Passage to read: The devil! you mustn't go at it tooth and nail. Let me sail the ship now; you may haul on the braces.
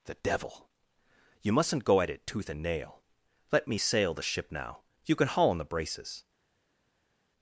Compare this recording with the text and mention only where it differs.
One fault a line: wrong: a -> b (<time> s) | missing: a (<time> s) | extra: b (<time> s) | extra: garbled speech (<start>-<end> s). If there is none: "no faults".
wrong: may -> can (5.1 s)